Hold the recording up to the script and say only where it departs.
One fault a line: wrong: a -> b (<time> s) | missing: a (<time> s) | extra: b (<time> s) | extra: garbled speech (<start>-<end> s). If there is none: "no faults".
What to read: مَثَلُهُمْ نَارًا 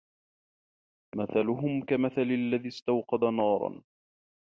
extra: كَمَثَلِ الَّذِي اسْتَوْقَدَ (1.9 s)